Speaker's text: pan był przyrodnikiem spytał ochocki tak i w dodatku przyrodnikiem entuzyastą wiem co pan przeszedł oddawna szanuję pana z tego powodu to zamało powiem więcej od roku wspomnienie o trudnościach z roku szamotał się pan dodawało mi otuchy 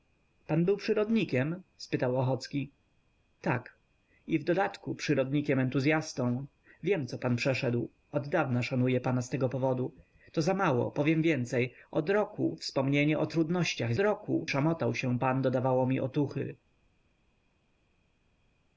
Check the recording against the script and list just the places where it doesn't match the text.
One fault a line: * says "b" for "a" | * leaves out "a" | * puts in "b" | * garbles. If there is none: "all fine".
all fine